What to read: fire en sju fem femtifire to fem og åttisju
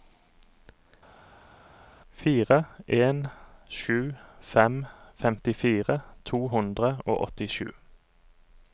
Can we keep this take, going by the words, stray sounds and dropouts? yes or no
no